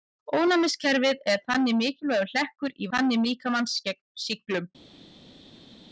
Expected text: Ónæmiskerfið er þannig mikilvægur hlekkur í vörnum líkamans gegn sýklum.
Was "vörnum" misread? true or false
true